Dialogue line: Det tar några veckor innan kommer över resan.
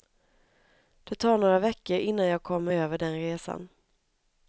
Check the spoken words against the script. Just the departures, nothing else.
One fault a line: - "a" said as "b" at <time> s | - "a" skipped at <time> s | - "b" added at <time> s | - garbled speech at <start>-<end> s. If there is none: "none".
- "jag" added at 2.2 s
- "den" added at 3.0 s